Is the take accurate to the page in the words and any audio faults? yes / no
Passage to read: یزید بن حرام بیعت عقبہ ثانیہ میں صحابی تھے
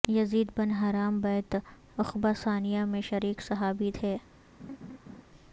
no